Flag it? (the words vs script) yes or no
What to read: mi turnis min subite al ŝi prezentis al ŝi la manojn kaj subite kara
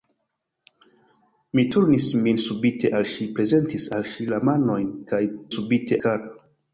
no